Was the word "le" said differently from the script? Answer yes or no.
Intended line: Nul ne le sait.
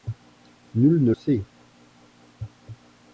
yes